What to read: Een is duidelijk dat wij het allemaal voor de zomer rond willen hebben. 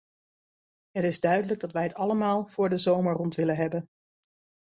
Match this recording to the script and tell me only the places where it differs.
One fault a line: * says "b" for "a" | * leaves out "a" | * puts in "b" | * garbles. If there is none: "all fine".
* says "Het" for "Een"